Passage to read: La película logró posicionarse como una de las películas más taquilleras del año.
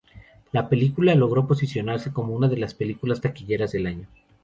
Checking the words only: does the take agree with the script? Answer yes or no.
no